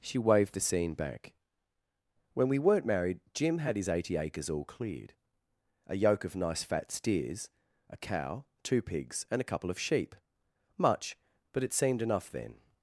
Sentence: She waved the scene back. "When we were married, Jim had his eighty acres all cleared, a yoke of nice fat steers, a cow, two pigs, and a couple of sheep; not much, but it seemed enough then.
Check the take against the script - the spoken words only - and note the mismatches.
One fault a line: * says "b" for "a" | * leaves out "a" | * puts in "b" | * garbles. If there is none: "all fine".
* says "weren't" for "were"
* leaves out "not"